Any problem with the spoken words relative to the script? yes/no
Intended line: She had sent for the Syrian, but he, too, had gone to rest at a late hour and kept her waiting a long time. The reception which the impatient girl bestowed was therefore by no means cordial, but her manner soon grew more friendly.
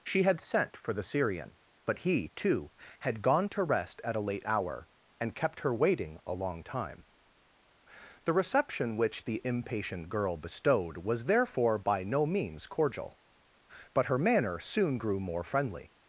no